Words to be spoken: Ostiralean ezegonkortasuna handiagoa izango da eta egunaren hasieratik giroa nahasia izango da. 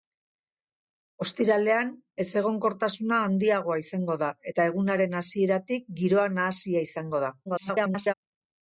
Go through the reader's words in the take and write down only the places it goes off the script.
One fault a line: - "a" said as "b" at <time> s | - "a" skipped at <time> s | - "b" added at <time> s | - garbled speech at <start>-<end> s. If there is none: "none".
- garbled speech at 7.5-8.1 s